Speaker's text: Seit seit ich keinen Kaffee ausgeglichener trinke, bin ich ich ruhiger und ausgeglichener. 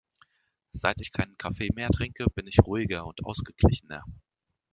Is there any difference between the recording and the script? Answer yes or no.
yes